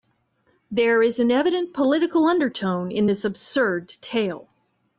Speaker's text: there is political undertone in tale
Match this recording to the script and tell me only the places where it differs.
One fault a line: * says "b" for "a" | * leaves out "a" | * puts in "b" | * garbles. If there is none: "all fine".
* puts in "an evident"
* puts in "this absurd"